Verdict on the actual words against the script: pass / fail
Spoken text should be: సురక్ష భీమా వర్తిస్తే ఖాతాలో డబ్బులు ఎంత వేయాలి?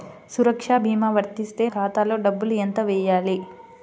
pass